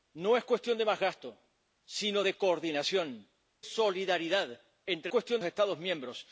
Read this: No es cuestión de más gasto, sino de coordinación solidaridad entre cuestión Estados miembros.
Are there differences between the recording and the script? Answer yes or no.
no